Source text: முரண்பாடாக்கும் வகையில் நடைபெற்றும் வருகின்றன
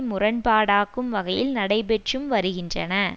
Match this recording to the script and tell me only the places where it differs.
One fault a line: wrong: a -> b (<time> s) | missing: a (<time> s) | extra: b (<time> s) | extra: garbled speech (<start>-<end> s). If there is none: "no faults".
no faults